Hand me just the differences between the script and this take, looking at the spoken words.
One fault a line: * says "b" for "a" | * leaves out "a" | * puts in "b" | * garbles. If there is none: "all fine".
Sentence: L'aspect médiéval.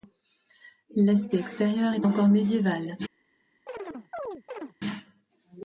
* puts in "extérieur est encore"